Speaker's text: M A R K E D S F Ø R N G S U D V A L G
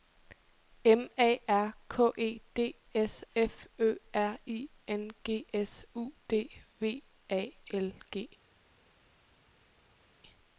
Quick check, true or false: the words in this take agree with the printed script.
false